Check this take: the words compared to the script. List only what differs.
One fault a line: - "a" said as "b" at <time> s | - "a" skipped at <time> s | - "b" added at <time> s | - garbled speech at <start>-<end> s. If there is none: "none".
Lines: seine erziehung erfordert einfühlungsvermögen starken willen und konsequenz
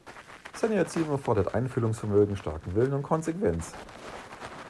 none